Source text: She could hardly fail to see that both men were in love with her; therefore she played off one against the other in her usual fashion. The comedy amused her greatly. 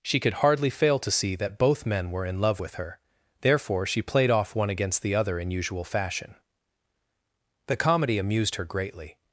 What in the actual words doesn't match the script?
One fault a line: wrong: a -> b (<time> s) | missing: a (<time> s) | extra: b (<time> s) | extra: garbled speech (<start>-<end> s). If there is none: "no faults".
missing: her (5.5 s)